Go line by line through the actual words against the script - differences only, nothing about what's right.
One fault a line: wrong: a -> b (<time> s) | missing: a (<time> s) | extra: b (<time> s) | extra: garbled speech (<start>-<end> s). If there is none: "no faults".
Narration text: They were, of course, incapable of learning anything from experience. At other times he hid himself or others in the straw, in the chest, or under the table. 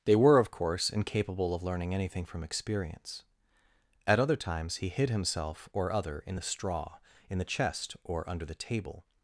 wrong: others -> other (5.9 s)